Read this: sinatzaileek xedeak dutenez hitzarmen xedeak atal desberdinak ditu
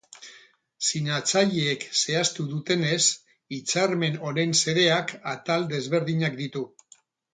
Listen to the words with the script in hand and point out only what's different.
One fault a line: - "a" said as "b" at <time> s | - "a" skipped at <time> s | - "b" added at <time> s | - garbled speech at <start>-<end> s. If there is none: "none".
- "xedeak" said as "zehaztu" at 2.0 s
- "honen" added at 4.3 s